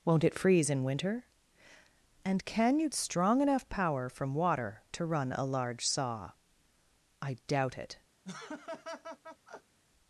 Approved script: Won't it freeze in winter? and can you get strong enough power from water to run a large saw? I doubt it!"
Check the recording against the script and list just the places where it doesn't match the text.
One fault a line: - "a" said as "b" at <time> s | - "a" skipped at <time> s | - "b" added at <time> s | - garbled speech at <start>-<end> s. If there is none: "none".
- "get" skipped at 2.9 s